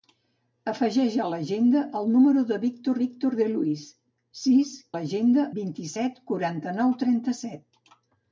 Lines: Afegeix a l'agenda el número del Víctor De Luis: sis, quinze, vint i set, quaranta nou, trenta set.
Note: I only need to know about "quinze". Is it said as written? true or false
false